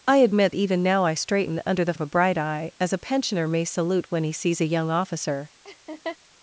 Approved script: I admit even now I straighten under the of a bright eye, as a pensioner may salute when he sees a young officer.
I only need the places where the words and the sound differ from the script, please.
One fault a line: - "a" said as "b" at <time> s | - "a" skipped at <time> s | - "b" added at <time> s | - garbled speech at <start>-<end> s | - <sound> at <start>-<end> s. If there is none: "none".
- laugh at 5.6-6.2 s